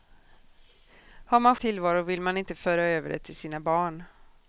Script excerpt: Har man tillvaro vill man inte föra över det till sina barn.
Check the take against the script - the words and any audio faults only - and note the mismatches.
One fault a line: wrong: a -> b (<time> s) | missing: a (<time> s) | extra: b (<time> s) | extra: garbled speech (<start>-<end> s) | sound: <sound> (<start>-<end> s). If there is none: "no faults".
no faults